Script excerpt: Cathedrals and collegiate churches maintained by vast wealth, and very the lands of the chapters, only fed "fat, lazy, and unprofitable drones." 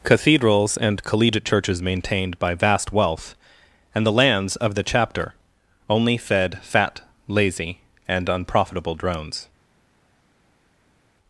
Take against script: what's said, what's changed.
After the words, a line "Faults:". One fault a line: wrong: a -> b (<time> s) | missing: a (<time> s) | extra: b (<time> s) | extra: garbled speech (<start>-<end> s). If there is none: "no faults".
Cathedrals and collegiate churches maintained by vast wealth, and the lands of the chapter, only fed "fat, lazy, and unprofitable drones."
Faults:
missing: very (4.0 s)
wrong: chapters -> chapter (4.8 s)